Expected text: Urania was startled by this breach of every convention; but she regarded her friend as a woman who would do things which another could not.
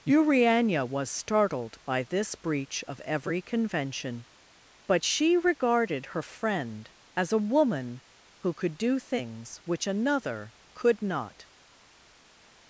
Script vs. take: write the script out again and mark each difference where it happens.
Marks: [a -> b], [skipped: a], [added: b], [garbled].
Urania was startled by this breach of every convention; but she regarded her friend as a woman who [would -> could] do things which another could not.